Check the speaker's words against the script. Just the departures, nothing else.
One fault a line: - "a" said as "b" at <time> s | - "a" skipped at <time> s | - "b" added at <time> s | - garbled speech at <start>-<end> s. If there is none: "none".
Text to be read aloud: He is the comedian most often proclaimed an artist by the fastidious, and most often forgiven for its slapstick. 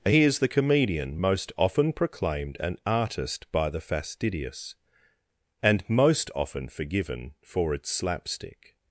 none